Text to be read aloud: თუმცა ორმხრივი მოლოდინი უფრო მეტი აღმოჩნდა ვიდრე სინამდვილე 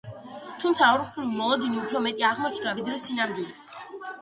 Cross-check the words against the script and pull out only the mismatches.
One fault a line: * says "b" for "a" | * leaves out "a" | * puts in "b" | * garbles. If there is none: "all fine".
all fine